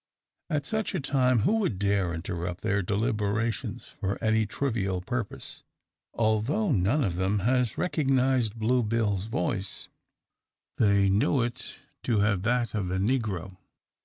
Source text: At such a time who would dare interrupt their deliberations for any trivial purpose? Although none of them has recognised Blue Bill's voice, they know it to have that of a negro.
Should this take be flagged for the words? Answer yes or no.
no